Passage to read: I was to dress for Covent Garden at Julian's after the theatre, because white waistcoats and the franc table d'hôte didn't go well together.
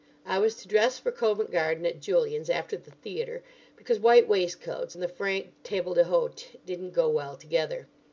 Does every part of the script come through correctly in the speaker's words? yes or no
yes